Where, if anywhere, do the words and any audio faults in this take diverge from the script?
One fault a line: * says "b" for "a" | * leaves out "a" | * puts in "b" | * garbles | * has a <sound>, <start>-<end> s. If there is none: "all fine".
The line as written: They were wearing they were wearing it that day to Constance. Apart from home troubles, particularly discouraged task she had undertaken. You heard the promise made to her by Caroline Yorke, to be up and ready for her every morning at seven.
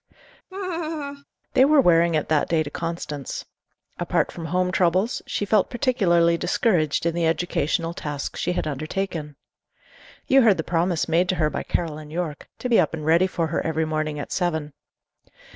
* has a laugh, 0.5-1.2 s
* leaves out "they were wearing"
* puts in "she felt"
* puts in "in the educational"